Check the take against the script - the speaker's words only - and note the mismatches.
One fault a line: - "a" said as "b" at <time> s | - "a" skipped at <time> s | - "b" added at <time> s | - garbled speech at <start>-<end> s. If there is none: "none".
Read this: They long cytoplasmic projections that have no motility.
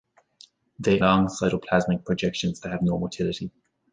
none